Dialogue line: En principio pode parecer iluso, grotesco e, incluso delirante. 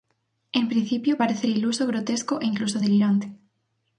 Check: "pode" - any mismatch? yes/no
yes